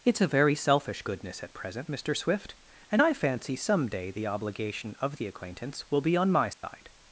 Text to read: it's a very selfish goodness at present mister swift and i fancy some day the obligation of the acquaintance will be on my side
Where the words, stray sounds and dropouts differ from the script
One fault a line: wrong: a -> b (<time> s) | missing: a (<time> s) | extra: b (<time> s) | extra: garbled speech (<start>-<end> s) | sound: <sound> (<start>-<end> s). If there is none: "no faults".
sound: dropout (6.5-6.6 s)